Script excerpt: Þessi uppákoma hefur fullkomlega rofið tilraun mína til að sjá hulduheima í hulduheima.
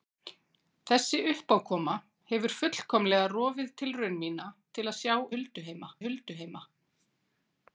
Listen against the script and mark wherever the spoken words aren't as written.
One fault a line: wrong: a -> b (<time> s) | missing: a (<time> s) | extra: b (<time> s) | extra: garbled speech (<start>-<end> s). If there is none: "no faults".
no faults